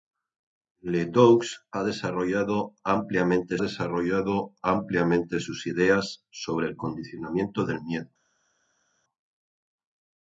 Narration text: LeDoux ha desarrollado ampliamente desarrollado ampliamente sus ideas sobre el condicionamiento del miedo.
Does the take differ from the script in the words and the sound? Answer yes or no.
no